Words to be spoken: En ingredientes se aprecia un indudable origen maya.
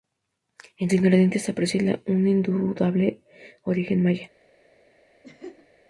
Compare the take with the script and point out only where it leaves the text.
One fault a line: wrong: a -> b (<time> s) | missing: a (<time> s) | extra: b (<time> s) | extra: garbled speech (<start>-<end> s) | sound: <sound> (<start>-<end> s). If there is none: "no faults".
sound: laugh (5.2-5.7 s)